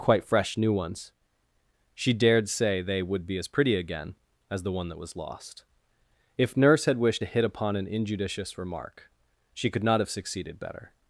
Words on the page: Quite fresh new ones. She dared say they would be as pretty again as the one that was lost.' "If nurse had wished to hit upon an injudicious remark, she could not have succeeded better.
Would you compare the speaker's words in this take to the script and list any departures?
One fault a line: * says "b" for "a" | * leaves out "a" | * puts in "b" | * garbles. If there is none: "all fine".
all fine